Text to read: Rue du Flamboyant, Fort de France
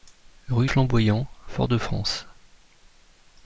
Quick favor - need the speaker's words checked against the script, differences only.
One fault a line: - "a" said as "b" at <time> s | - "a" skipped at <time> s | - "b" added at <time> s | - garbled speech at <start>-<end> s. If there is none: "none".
- "du" skipped at 0.7 s